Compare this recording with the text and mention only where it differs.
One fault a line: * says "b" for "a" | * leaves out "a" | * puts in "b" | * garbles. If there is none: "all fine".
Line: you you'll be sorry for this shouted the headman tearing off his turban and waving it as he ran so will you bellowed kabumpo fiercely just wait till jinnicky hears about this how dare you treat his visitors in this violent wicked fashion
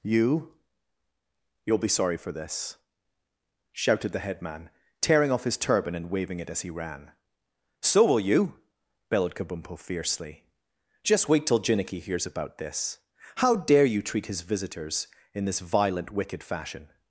all fine